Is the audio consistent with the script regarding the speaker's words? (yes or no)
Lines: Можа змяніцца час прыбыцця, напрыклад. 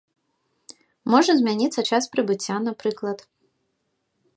yes